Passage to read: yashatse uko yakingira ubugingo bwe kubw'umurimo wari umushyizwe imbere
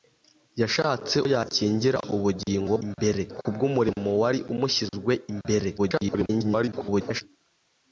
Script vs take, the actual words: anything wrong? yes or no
yes